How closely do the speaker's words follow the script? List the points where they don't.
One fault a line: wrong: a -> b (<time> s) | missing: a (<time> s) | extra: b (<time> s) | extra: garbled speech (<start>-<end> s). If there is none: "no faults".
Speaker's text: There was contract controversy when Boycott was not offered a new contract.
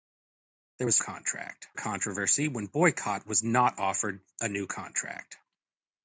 no faults